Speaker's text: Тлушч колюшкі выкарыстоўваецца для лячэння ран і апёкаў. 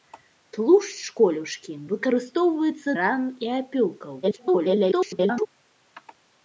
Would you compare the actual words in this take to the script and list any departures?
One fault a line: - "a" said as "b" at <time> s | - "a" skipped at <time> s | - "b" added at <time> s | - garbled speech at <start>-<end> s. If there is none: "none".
- "для лячэння" skipped at 2.9 s
- garbled speech at 4.2-5.5 s